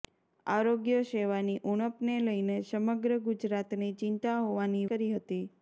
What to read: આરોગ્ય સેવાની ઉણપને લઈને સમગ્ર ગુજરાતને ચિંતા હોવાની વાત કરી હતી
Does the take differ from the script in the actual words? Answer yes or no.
yes